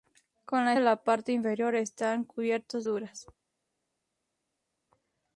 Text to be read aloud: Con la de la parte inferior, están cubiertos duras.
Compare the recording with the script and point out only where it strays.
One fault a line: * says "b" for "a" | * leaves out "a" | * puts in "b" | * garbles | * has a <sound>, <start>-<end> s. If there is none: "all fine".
all fine